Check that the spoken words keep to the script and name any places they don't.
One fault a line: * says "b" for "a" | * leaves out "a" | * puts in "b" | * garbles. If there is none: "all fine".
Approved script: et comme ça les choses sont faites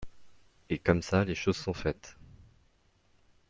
all fine